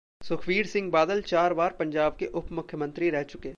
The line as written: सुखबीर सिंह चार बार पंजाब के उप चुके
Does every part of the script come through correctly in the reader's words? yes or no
no